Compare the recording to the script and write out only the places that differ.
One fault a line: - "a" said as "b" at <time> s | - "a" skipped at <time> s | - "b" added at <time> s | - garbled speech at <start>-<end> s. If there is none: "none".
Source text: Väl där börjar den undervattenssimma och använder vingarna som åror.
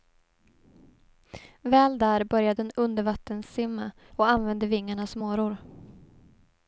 none